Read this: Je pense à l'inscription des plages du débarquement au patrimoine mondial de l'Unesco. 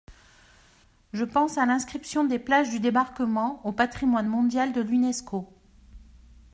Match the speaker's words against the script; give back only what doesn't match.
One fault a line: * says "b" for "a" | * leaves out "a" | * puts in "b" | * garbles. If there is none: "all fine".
all fine